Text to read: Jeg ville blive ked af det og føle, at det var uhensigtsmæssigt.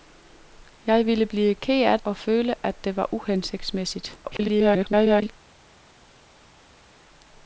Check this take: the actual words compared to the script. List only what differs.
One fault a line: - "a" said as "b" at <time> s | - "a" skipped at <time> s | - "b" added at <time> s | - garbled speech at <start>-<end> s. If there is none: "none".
- "det" skipped at 2.0 s
- garbled speech at 4.2-5.3 s